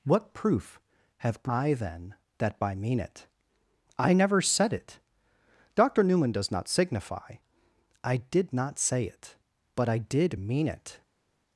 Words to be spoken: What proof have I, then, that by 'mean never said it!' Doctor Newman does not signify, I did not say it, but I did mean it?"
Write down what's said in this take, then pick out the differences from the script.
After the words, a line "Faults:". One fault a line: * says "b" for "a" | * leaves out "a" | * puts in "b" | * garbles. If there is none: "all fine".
What proof have I, then, that by 'mean it? I never said it!' Doctor Newman does not signify, I did not say it, but I did mean it?"
Faults:
* puts in "it I"